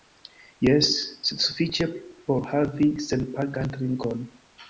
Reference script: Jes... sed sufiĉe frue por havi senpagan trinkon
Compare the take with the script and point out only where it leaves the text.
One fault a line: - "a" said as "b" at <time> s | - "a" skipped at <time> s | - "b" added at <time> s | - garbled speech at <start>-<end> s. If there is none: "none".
- "frue" skipped at 1.9 s